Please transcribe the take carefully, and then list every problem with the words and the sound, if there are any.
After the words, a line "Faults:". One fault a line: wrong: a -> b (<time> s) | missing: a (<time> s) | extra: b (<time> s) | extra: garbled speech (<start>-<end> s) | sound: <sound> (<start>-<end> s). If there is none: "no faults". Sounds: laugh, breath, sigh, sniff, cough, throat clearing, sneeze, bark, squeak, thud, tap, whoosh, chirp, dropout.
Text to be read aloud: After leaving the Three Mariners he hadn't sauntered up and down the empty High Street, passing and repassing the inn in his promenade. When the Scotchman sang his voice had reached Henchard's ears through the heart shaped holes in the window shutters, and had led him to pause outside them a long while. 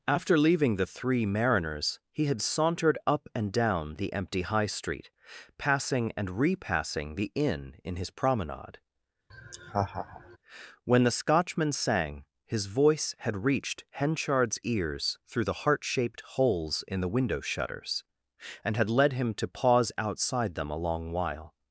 After leaving the Three Mariners he had sauntered up and down the empty High Street, passing and repassing the inn in his promenade. When the Scotchman sang his voice had reached Henchard's ears through the heart shaped holes in the window shutters, and had led him to pause outside them a long while.
Faults:
wrong: hadn't -> had (2.2 s)
sound: laugh (9.3-10.4 s)